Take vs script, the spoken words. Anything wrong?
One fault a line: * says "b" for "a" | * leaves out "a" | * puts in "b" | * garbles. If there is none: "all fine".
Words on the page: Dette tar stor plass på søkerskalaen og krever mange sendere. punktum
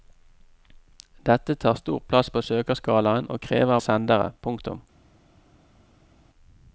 * leaves out "mange"